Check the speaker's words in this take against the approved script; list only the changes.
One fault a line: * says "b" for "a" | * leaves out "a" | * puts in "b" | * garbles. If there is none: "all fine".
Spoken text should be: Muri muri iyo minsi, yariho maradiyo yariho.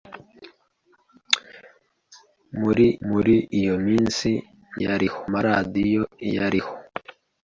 all fine